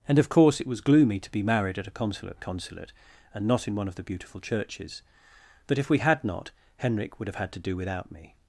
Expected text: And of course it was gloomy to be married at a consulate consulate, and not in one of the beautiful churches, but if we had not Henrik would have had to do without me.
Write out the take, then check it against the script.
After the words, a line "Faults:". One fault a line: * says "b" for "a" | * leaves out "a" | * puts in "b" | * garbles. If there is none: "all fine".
And of course it was gloomy to be married at a consulate consulate, and not in one of the beautiful churches, but if we had not Henrik would have had to do without me.
Faults:
all fine